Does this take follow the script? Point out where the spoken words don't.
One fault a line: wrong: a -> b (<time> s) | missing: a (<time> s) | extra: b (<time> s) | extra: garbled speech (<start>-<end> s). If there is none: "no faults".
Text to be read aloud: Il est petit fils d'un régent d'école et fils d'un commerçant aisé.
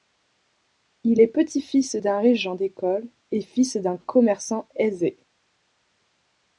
no faults